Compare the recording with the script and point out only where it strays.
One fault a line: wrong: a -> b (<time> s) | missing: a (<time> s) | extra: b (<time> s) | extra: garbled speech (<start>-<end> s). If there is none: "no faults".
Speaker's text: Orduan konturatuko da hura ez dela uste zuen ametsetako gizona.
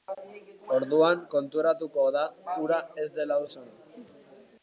missing: uste zuen ametsetako (3.4 s)